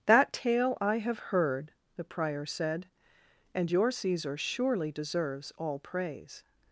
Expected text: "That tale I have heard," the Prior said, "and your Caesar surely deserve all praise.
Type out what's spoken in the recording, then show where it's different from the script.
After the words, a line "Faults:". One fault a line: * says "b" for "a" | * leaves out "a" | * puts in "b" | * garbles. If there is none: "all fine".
"That tale I have heard," the Prior said, "and your Caesar surely deserves all praise.
Faults:
* says "deserves" for "deserve"